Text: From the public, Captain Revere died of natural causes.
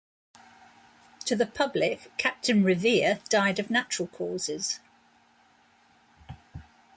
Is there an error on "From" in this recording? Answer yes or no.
yes